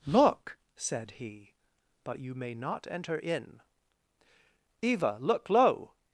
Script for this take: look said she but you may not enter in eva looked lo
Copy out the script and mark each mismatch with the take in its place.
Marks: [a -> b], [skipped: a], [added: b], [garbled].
look said [she -> he] but you may not enter in eva [looked -> look] lo